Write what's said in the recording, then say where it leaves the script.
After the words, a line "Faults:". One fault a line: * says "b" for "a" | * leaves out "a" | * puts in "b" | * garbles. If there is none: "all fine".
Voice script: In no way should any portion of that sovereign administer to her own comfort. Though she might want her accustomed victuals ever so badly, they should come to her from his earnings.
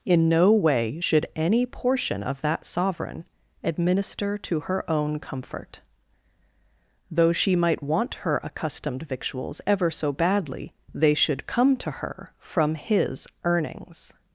In no way should any portion of that sovereign administer to her own comfort. Though she might want her accustomed victuals ever so badly, they should come to her from his earnings.
Faults:
all fine